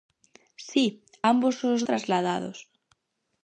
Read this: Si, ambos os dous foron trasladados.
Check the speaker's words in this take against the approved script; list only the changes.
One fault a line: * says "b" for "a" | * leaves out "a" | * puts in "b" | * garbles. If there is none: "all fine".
* leaves out "dous foron"